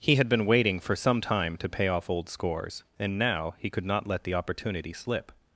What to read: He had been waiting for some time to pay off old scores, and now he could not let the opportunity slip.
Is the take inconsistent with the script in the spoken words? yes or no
no